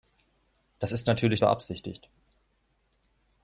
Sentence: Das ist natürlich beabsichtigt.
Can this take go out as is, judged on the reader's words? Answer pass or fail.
pass